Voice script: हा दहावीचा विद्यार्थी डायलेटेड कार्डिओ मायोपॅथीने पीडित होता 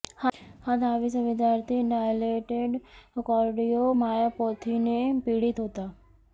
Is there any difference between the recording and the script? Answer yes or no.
no